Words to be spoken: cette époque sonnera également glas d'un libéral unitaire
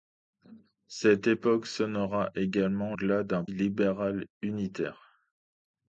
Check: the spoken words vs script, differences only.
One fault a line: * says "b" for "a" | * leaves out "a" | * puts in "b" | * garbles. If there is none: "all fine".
all fine